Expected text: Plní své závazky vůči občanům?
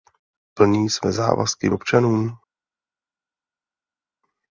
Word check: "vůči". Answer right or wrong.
wrong